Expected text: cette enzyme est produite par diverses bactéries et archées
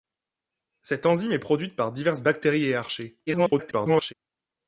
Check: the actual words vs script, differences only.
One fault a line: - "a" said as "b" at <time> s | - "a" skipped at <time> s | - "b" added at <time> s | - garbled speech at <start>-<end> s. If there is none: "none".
- garbled speech at 3.3-4.1 s